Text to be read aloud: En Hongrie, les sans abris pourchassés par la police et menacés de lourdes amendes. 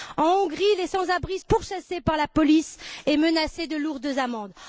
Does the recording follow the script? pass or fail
pass